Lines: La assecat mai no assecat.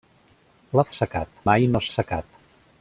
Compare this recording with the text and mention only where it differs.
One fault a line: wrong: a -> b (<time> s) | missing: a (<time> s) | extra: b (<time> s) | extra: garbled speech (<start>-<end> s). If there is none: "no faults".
no faults